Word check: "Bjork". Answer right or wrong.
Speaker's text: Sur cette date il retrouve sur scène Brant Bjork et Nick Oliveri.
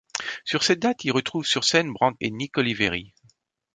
wrong